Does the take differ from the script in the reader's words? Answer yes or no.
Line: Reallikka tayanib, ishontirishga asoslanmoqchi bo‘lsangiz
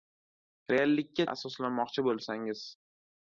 yes